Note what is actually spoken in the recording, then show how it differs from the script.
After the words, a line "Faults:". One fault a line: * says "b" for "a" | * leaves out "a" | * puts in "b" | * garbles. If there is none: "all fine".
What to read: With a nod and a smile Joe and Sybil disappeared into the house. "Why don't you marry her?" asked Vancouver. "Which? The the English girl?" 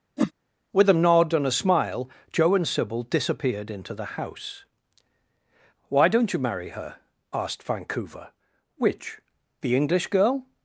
With a nod and a smile Joe and Sybil disappeared into the house. "Why don't you marry her?" asked Vancouver. "Which? The English girl?"
Faults:
* leaves out "the"